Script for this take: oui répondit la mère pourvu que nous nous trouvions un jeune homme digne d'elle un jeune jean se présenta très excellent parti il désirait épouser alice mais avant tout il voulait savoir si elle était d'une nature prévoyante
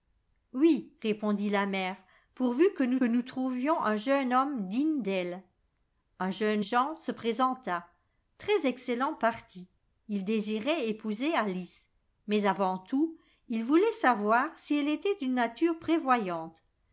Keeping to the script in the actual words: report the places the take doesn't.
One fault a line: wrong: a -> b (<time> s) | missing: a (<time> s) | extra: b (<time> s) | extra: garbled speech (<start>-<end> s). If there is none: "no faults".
no faults